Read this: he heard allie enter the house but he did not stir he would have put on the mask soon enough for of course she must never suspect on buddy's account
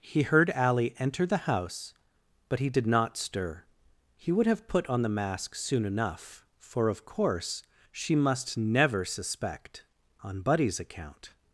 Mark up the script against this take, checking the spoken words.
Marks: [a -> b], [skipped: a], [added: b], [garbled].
he heard allie enter the house but he did not stir he would have put on the mask soon enough for of course she must never suspect on buddy's account